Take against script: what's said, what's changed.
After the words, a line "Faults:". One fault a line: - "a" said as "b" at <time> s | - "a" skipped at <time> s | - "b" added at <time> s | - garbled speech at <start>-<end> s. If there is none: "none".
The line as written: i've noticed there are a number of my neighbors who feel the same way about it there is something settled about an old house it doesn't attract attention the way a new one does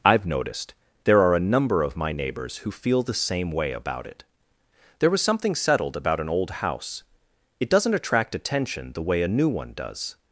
i've noticed there are a number of my neighbors who feel the same way about it there was something settled about an old house it doesn't attract attention the way a new one does
Faults:
- "is" said as "was" at 5.1 s